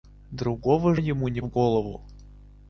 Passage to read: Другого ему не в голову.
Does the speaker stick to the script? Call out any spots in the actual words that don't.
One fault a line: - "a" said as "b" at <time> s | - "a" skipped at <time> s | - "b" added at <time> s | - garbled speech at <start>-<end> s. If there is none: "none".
none